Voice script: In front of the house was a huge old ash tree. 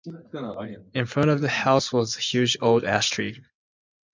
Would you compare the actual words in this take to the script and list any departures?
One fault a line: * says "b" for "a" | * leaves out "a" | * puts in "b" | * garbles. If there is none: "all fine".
all fine